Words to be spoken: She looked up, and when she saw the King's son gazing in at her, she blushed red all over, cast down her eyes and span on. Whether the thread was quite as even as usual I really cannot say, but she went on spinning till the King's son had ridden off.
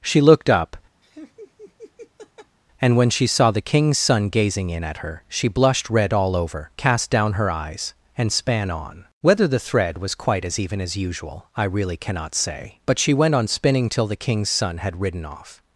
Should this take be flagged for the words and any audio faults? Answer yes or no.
yes